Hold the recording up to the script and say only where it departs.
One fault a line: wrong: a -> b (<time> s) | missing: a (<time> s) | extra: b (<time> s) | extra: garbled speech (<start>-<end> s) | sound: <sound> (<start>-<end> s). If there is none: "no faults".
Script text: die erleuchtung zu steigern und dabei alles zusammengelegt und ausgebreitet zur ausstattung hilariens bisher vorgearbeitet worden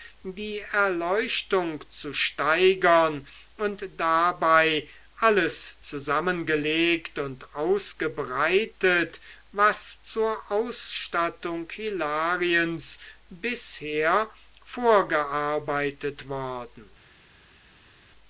extra: was (9.5 s)